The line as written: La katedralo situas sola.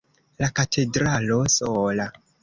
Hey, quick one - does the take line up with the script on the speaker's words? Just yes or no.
no